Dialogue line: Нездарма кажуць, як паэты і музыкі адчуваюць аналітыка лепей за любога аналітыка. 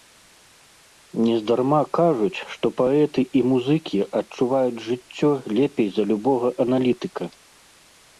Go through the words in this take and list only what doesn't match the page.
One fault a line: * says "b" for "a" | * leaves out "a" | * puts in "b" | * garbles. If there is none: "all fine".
* says "што" for "як"
* says "жыццё" for "аналітыка"